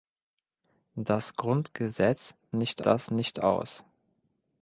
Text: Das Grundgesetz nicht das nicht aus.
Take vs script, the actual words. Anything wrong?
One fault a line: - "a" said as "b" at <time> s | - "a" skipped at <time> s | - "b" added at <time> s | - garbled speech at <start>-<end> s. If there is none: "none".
none